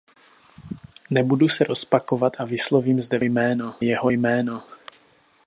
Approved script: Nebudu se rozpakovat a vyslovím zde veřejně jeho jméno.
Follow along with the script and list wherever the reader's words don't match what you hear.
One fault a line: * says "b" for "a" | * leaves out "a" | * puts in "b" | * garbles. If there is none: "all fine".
* says "jméno" for "veřejně"